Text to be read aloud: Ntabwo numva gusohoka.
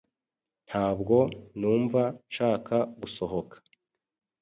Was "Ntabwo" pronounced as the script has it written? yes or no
yes